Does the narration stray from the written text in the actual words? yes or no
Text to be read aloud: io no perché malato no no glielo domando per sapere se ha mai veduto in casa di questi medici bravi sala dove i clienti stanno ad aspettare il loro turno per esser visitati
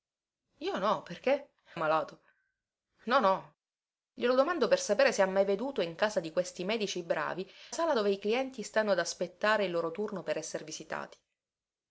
no